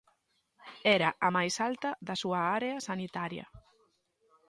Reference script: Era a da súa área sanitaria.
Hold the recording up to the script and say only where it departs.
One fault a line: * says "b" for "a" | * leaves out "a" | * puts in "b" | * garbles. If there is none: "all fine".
* puts in "máis alta"